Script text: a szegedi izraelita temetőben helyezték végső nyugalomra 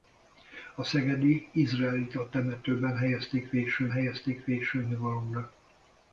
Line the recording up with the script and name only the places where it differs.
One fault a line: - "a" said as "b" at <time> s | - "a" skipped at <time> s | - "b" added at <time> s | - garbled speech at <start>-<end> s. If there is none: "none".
- "helyezték végső" added at 3.9 s